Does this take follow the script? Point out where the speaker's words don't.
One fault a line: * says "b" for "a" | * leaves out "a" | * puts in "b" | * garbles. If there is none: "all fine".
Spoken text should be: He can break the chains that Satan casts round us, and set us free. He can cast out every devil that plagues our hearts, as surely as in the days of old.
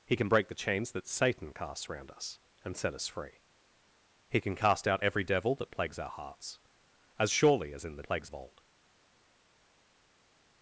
* says "plagues" for "days"